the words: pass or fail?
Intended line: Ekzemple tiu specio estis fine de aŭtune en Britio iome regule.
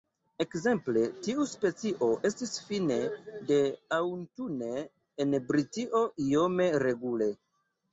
pass